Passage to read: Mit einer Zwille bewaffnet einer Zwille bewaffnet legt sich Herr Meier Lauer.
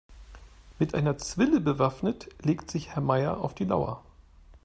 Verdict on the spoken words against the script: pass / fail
fail